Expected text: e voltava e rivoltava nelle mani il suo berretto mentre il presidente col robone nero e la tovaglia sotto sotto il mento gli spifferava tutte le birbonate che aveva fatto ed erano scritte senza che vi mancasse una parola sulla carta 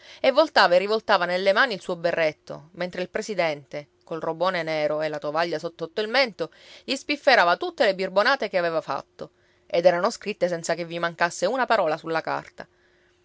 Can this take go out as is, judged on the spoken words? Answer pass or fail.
pass